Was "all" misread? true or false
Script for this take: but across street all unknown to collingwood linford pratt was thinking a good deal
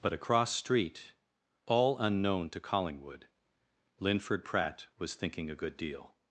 false